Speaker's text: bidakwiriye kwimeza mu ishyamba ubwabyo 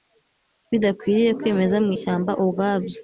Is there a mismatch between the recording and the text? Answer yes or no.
no